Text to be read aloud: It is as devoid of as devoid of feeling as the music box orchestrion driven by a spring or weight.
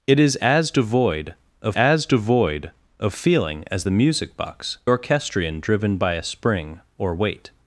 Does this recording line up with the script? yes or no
yes